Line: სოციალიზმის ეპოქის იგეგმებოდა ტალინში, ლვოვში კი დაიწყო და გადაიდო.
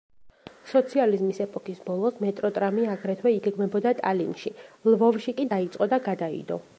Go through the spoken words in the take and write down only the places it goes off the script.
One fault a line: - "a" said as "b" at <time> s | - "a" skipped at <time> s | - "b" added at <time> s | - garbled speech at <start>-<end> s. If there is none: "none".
- "ბოლოს მეტროტრამი აგრეთვე" added at 1.9 s